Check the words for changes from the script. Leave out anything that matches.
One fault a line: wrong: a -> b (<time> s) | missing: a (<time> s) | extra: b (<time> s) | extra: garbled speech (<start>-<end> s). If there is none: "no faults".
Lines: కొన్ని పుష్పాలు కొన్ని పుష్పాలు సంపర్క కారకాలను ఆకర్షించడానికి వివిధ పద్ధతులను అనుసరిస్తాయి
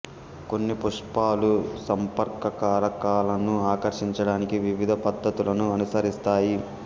missing: కొన్ని పుష్పాలు (1.5 s)